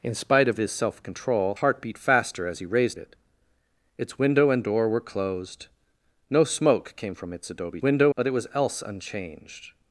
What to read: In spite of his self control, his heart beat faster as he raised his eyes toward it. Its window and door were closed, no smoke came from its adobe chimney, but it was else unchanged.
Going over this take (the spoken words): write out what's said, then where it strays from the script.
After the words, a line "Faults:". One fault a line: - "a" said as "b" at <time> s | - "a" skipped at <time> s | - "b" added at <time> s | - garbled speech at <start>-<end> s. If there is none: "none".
In spite of his self control, heart beat faster as he raised it. Its window and door were closed, no smoke came from its adobe window, but it was else unchanged.
Faults:
- "his" skipped at 1.6 s
- "his eyes toward" skipped at 3.0 s
- "chimney" said as "window" at 7.8 s